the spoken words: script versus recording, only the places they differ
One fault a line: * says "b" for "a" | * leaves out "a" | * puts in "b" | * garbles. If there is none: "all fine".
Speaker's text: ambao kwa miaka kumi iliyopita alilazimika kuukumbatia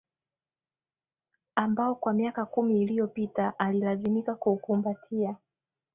all fine